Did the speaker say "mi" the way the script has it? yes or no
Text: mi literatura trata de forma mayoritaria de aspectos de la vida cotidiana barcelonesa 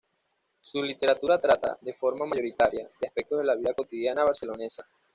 no